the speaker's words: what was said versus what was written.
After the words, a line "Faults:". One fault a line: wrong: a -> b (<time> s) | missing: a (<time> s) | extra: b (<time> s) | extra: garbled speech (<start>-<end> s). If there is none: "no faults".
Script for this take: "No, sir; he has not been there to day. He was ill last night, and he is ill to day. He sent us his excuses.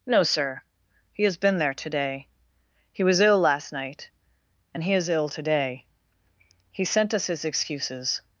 "No, sir; he has been there to day. He was ill last night, and he is ill to day. He sent us his excuses.
Faults:
missing: not (1.4 s)